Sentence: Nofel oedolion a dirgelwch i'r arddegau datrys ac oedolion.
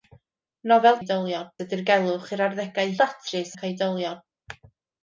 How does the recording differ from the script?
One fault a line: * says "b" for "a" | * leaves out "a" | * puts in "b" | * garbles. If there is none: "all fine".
all fine